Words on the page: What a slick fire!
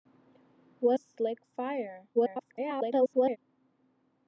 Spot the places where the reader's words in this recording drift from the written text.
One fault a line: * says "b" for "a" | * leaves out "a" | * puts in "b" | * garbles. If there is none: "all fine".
* leaves out "a"
* garbles